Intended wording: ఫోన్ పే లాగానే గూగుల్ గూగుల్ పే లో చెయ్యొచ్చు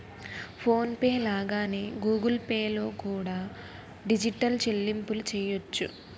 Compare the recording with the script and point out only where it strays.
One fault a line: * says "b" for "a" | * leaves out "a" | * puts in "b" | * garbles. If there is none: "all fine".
* leaves out "గూగుల్"
* puts in "కూడా డిజిటల్ చెల్లింపులు"